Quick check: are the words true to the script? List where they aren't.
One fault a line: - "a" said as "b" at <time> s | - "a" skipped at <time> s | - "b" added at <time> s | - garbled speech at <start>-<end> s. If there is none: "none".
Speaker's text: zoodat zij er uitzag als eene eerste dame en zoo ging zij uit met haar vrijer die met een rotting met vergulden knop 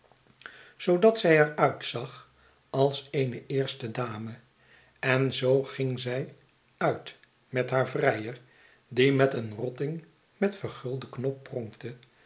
none